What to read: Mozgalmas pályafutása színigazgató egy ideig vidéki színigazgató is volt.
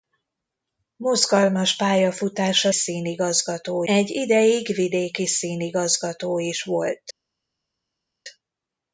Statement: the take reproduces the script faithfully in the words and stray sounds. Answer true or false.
true